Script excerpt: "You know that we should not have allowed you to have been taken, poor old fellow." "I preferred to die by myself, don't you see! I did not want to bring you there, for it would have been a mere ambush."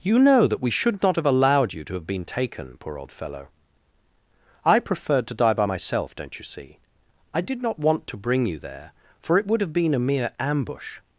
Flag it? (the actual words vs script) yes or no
no